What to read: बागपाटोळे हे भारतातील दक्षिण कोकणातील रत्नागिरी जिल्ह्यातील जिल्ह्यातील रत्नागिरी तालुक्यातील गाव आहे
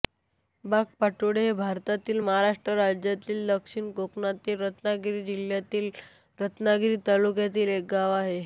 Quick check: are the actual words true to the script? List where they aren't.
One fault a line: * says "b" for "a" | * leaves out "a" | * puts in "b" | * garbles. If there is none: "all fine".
* puts in "महाराष्ट्र राज्यातील"
* leaves out "जिल्ह्यातील"
* puts in "एक"